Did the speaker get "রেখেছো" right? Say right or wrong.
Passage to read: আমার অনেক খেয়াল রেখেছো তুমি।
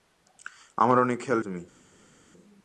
wrong